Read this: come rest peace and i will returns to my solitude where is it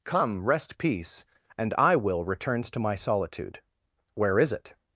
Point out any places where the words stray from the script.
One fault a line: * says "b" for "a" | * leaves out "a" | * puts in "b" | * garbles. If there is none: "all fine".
all fine